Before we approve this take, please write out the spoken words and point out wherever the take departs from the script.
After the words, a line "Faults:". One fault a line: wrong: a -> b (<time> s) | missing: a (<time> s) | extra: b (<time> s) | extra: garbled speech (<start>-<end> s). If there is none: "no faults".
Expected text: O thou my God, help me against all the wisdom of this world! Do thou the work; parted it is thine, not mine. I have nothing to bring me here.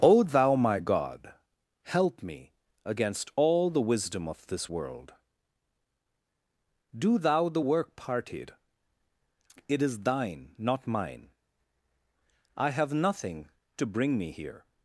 O thou my God, help me against all the wisdom of this world! Do thou the work; parted it is thine, not mine. I have nothing to bring me here.
Faults:
no faults